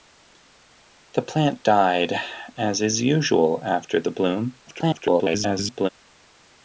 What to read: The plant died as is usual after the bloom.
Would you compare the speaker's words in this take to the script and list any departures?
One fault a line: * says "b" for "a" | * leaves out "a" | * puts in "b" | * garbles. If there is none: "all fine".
* garbles